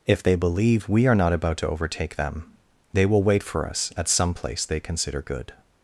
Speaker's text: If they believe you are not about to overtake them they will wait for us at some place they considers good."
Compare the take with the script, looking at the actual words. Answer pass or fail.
fail